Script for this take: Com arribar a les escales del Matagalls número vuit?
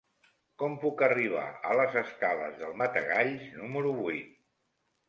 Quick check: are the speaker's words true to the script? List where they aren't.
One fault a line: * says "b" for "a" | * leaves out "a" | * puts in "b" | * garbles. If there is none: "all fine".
* puts in "puc"